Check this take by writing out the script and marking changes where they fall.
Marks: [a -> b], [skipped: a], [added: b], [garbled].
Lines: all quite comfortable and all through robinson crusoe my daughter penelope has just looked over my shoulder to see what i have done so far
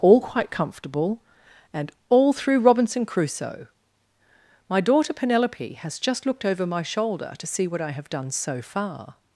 all quite comfortable and all through robinson crusoe my daughter penelope has just looked over my shoulder to see what i have done so far